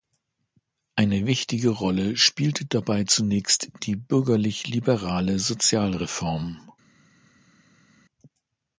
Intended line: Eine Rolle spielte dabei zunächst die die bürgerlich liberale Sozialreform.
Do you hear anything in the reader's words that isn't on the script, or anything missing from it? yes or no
yes